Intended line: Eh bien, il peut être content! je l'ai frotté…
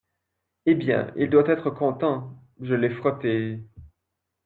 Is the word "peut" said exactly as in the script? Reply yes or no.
no